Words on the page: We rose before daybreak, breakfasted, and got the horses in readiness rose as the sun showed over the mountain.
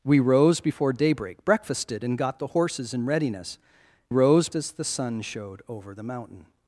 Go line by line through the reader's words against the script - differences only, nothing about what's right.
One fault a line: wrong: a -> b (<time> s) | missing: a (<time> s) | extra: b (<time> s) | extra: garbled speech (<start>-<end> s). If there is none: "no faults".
no faults